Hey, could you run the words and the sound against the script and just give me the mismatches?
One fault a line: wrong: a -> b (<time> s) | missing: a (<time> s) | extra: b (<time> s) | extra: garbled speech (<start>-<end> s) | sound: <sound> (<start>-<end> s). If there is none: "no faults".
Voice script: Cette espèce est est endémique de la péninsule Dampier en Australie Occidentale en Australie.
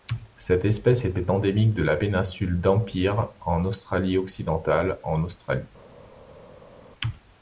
no faults